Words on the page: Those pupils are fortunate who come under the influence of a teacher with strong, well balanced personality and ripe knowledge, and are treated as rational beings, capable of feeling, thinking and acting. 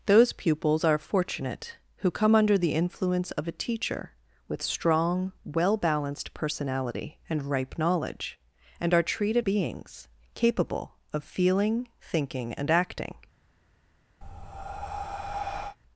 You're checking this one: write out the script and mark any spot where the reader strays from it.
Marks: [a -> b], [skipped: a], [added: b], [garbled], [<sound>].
Those pupils are fortunate who come under the influence of a teacher with strong, well balanced personality and ripe knowledge, and are treated [skipped: as rational] beings, capable of feeling, thinking and acting. [breath]